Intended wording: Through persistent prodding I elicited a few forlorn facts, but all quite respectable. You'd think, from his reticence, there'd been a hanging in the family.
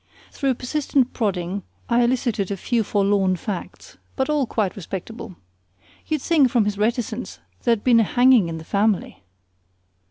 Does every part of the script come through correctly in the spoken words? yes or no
yes